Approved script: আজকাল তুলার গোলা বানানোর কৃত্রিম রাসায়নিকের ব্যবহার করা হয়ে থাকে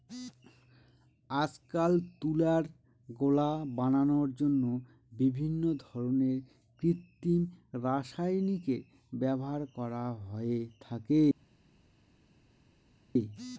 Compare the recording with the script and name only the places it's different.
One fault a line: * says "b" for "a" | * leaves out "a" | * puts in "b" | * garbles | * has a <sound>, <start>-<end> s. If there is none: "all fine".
* puts in "জন্য বিভিন্ন ধরনের"